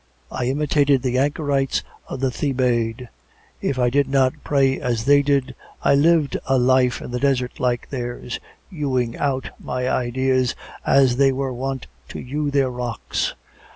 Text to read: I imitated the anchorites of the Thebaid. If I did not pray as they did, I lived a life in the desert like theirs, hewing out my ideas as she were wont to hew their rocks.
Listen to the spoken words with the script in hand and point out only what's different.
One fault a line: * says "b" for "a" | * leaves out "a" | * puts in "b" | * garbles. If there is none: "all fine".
* says "they" for "she"